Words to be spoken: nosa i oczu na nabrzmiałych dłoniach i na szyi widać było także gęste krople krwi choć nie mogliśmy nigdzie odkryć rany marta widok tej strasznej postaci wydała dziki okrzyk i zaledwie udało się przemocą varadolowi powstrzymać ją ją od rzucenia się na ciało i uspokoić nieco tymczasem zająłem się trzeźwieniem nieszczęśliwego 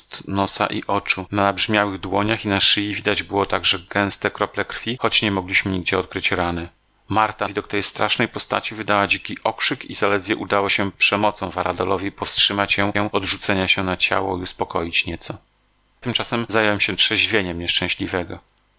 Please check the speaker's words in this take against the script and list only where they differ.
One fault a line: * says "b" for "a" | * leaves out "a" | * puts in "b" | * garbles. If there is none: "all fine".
all fine